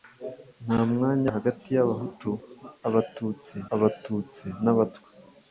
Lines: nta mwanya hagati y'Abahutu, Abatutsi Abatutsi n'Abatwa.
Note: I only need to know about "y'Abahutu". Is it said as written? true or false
true